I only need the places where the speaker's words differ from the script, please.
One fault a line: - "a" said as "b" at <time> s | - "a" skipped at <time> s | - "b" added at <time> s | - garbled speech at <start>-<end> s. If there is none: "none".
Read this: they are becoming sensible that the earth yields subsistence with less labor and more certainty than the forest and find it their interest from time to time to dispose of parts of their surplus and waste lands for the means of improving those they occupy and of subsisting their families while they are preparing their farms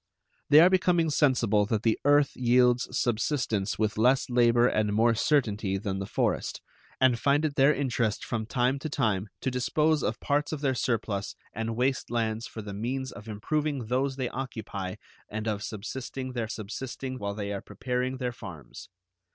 - "families" said as "subsisting" at 16.5 s